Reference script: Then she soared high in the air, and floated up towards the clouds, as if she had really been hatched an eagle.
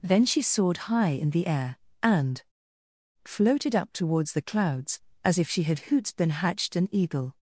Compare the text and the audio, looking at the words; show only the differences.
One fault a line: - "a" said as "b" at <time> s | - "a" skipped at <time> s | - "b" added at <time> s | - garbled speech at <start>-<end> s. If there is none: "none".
- "really" said as "hoots" at 5.9 s